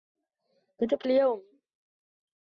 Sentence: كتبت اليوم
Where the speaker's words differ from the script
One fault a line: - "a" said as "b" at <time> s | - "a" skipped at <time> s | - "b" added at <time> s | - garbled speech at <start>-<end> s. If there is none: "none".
none